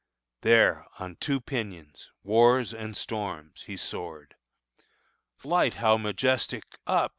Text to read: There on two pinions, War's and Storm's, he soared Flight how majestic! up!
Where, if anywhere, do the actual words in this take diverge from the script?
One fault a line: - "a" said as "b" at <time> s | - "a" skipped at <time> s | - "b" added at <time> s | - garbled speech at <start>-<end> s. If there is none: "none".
none